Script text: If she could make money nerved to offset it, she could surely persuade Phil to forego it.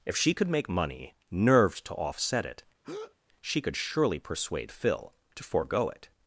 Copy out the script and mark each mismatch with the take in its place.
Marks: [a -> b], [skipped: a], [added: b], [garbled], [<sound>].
If she could make money nerved to offset it, [breath] she could surely persuade Phil to forego it.